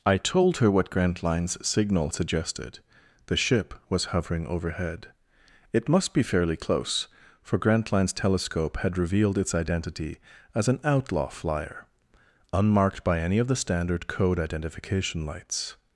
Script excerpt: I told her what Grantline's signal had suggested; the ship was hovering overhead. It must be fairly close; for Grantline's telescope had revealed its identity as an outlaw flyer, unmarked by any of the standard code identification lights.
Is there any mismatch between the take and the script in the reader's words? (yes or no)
yes